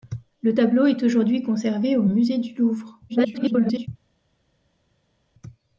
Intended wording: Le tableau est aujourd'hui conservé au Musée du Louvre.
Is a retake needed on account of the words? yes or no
yes